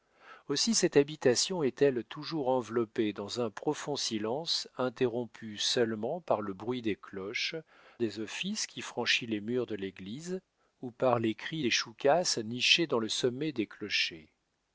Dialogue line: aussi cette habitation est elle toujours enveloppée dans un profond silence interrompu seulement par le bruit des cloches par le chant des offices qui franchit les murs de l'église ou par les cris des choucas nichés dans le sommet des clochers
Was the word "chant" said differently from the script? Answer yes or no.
yes